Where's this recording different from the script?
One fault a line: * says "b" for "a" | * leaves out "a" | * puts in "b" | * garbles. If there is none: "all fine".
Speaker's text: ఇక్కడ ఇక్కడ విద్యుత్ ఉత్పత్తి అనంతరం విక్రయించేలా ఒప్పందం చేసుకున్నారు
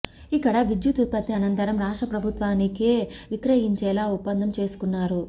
* leaves out "ఇక్కడ"
* puts in "రాష్ట్ర ప్రభుత్వానికే"